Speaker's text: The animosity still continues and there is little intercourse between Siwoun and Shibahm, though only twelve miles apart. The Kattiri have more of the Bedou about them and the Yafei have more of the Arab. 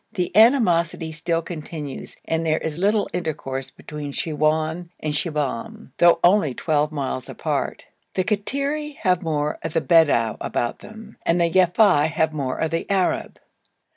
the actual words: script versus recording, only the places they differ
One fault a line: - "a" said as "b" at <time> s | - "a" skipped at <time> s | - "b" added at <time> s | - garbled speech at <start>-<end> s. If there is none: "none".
none